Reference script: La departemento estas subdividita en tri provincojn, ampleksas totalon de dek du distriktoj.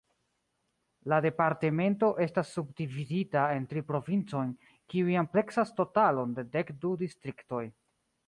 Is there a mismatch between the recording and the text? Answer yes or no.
yes